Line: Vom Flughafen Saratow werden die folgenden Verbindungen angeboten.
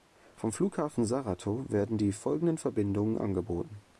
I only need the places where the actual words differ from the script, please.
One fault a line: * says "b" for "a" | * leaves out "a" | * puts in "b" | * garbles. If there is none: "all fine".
all fine